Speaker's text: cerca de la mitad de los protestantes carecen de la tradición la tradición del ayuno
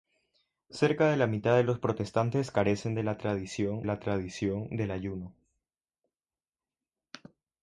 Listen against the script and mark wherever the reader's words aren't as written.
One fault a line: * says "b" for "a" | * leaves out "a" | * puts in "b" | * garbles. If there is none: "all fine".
all fine